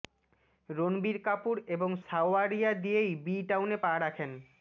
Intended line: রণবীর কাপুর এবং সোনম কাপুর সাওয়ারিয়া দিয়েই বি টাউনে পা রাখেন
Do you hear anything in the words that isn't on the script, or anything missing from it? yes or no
yes